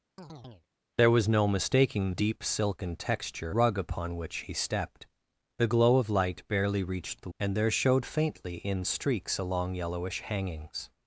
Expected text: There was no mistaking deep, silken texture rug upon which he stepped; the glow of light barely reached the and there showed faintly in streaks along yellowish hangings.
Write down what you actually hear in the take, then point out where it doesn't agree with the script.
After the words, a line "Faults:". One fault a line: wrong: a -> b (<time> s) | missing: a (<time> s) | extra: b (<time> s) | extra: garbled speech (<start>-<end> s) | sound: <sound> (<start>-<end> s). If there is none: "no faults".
There was no mistaking deep, silken texture rug upon which he stepped; the glow of light barely reached the and there showed faintly in streaks along yellowish hangings.
Faults:
sound: chirp (0.2-0.7 s)